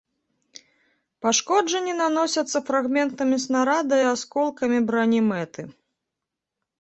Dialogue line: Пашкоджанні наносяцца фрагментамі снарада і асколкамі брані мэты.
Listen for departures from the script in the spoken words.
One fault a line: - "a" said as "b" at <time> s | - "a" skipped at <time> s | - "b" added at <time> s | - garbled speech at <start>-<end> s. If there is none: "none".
none